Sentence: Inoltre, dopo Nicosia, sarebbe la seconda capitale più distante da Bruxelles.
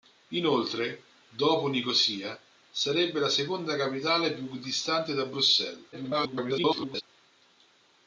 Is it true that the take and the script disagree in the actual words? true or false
true